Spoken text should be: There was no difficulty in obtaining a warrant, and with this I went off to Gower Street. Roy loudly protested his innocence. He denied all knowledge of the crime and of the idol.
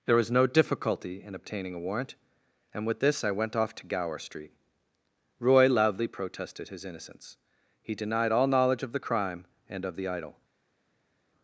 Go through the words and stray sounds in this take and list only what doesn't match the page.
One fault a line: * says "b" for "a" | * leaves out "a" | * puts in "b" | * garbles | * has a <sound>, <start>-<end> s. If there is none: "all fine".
all fine